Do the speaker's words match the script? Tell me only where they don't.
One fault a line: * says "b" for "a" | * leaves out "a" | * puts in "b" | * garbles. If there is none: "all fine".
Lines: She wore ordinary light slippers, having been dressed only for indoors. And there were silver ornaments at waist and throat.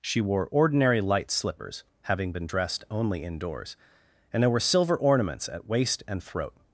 * leaves out "for"